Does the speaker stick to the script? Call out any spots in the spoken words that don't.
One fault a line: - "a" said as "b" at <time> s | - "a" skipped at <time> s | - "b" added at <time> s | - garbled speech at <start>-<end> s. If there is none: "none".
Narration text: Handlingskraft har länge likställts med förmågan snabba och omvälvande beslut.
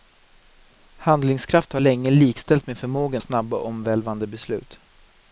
none